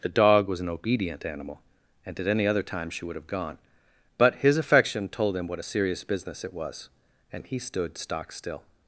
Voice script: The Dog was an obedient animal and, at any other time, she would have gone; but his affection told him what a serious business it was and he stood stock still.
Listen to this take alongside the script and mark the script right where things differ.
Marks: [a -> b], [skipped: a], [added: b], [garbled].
The Dog was an obedient animal and, at any other time, she would have gone; but his affection told him what a serious business it was and he stood stock still.